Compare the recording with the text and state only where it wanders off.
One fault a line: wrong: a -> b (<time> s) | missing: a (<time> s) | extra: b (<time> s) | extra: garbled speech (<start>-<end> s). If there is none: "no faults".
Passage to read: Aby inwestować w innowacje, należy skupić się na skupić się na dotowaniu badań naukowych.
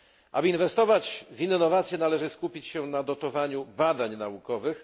missing: skupić się na (3.0 s)